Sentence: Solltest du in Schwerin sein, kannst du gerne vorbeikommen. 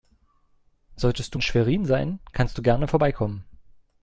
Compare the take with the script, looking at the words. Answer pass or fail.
pass